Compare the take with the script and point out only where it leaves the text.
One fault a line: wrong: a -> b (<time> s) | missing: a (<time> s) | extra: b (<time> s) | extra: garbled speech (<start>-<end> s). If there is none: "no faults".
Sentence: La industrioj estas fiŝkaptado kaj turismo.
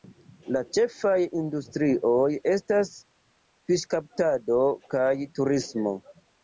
extra: ĉefaj (0.8 s)